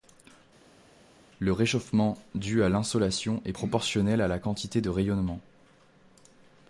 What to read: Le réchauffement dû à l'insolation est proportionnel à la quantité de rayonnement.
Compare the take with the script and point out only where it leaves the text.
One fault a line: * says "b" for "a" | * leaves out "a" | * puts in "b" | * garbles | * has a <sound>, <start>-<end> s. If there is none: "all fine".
all fine